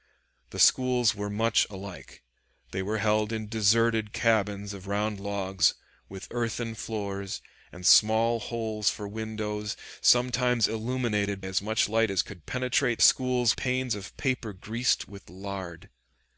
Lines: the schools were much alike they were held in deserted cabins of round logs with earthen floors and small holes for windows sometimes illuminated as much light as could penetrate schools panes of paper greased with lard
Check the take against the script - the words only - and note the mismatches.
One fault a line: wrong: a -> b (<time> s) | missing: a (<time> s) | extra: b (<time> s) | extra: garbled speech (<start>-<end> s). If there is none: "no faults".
no faults